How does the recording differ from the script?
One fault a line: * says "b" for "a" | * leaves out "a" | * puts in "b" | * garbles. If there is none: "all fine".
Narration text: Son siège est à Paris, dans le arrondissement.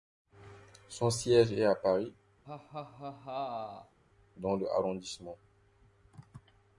all fine